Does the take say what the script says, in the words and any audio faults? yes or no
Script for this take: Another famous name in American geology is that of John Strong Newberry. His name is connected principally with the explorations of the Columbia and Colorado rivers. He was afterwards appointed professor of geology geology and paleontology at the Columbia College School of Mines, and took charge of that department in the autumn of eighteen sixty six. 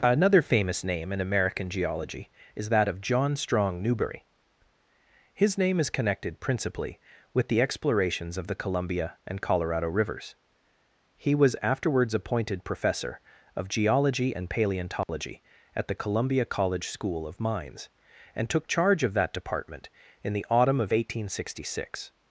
no